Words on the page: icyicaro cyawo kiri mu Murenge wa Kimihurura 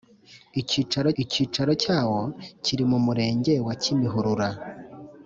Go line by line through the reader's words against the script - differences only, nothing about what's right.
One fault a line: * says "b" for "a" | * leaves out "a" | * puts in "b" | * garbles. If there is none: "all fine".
* puts in "icyicaro"